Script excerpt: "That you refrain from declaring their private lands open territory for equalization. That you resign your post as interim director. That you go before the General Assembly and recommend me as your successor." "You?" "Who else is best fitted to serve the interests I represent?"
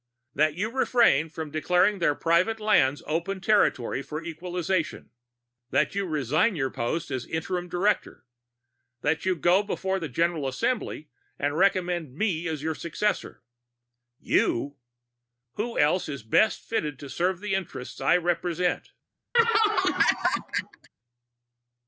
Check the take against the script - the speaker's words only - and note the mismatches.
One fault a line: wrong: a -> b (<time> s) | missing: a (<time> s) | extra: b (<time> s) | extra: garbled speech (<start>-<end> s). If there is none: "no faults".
no faults